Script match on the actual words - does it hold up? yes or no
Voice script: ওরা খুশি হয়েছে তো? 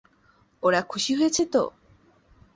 yes